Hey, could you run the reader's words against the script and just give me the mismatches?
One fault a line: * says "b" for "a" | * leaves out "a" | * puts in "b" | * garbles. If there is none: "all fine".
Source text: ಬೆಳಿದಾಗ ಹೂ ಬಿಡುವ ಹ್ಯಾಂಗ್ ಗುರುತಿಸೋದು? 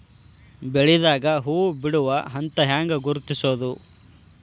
* puts in "ಹಂತ"